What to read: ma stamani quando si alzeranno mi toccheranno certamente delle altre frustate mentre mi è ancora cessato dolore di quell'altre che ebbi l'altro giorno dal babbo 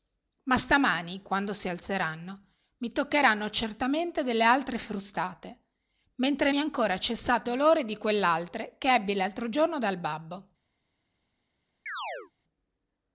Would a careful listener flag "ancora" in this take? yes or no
no